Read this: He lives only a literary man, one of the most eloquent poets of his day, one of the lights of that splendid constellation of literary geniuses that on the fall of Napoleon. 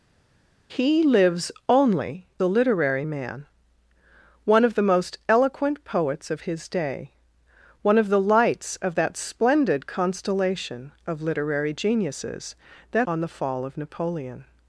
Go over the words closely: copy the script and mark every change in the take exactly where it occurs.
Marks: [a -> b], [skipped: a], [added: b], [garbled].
He lives only a literary man, one of the most eloquent poets of his day, one of the lights of that splendid constellation of literary geniuses that on the fall of Napoleon.